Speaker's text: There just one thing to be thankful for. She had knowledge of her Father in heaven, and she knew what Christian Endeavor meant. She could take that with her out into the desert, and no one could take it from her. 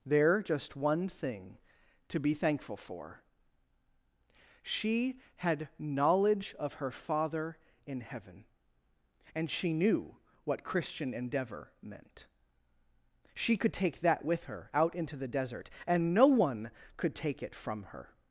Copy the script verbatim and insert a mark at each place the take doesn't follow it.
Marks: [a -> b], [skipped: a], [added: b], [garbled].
There just one thing to be thankful for. She had knowledge of her Father in heaven, and she knew what Christian Endeavor meant. She could take that with her out into the desert, and no one could take it from her.